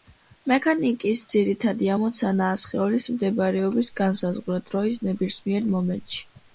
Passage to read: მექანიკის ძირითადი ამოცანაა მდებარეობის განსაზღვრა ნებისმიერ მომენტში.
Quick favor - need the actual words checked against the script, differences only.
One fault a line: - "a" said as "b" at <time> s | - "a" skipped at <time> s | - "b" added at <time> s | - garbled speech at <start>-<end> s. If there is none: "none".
- "სხეულის" added at 2.6 s
- "დროის" added at 4.7 s